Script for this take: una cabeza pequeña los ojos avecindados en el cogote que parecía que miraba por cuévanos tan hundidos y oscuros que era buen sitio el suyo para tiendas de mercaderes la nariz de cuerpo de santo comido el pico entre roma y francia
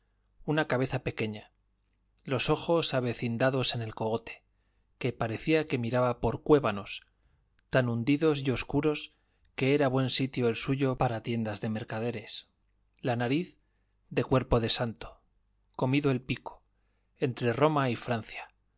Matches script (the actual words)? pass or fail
pass